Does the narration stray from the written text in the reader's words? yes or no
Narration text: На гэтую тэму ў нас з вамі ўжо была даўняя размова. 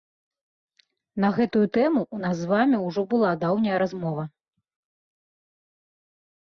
no